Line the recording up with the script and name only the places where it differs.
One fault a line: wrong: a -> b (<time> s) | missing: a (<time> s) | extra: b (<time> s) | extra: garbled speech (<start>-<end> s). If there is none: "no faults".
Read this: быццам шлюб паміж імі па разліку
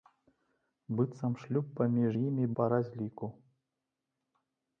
no faults